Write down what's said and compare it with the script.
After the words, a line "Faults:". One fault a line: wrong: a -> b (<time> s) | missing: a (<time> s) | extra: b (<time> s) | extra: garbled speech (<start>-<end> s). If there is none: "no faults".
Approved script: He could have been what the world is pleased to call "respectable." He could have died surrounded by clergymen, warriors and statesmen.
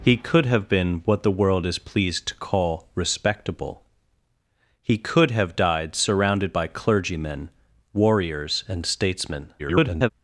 He could have been what the world is pleased to call "respectable." He could have died surrounded by clergymen, warriors and statesmen. [garbled]
Faults:
extra: garbled speech (9.6-10.1 s)